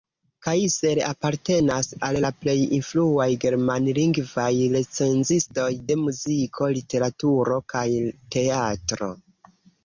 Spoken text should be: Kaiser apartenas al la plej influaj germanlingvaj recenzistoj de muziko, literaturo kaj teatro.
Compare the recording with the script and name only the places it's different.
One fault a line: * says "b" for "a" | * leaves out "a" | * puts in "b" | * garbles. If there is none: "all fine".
all fine